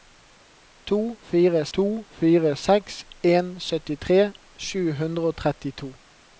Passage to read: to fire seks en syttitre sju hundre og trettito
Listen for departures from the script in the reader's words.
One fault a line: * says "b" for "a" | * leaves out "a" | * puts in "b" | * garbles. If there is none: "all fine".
* puts in "to fire"